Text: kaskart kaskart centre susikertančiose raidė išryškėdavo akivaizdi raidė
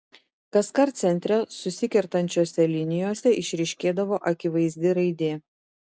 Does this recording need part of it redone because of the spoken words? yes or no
yes